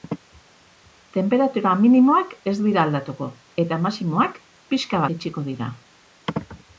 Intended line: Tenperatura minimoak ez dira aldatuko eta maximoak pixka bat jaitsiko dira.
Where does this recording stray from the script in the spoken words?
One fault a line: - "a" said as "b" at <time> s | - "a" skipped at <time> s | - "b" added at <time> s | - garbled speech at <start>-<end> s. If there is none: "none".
- "bat" skipped at 5.0 s